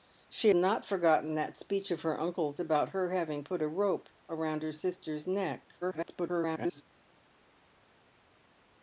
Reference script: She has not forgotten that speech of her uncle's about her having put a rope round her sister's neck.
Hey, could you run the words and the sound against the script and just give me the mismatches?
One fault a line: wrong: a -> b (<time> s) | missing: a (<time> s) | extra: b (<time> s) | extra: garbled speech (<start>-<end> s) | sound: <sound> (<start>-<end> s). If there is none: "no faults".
missing: has (0.5 s)
extra: garbled speech (5.8-6.8 s)